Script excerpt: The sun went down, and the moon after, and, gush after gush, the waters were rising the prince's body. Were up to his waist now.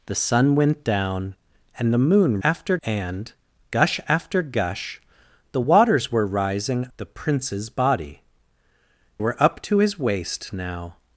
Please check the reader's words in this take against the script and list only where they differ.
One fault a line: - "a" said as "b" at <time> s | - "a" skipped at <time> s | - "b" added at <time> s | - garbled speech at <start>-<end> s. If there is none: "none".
none